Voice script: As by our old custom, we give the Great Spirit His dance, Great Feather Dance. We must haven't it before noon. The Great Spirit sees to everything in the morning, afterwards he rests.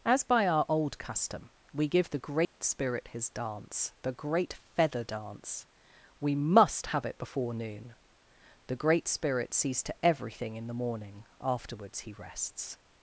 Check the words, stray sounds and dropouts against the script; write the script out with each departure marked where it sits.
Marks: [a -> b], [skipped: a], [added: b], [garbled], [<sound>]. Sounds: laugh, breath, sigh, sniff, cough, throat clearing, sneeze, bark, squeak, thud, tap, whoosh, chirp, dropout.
As by our old custom, we give the Great [dropout] Spirit His dance, [added: the] Great Feather Dance. We must [haven't -> have] it before noon. The Great Spirit sees to everything in the morning, afterwards he rests.